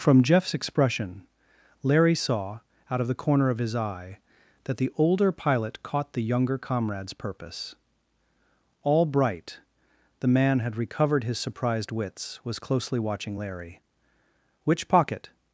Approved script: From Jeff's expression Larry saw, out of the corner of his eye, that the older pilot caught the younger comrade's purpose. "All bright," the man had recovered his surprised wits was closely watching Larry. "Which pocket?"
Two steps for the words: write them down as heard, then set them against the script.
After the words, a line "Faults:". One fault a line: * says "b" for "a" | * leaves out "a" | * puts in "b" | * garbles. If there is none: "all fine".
From Jeff's expression Larry saw, out of the corner of his eye, that the older pilot caught the younger comrade's purpose. "All bright," the man had recovered his surprised wits was closely watching Larry. "Which pocket?"
Faults:
all fine